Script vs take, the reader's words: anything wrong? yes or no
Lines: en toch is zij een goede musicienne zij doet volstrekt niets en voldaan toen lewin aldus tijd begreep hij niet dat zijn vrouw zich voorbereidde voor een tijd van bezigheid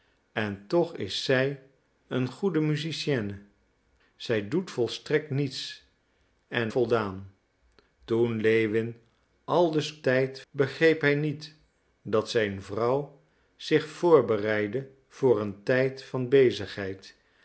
no